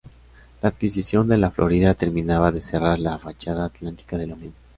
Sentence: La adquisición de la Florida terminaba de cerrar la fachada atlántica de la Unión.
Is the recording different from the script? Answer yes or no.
no